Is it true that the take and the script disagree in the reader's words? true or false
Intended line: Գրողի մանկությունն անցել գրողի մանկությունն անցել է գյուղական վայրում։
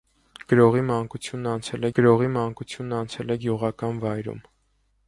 false